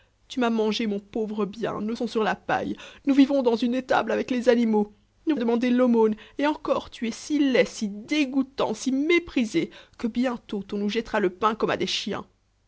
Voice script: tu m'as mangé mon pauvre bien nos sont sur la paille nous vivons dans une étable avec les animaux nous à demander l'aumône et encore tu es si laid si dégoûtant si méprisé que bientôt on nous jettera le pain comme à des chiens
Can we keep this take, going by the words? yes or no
yes